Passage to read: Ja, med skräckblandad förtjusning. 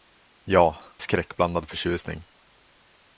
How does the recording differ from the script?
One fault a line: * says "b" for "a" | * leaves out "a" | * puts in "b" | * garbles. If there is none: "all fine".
* leaves out "med"